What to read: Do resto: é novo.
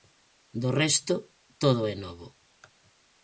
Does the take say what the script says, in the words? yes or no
no